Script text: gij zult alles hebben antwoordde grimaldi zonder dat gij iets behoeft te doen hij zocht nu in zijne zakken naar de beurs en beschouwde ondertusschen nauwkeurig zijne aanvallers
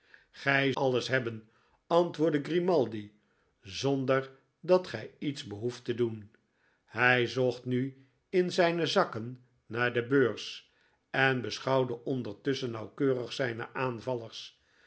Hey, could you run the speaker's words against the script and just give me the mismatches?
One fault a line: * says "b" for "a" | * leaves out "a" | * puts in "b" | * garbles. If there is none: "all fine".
* leaves out "zult"